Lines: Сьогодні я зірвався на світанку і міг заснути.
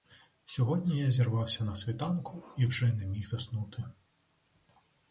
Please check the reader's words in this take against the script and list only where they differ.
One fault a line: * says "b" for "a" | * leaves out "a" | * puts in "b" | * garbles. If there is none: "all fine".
* puts in "вже не"